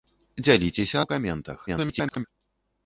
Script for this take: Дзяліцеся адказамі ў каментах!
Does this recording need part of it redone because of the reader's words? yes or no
yes